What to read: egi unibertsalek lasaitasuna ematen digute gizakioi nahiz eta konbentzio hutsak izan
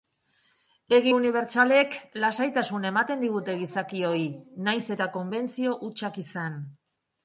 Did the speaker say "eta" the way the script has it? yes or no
yes